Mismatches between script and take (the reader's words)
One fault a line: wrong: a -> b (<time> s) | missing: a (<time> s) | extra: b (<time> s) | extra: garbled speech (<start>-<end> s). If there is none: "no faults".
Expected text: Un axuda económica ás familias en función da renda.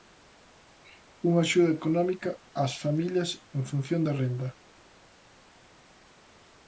wrong: Un -> Unha (1.3 s)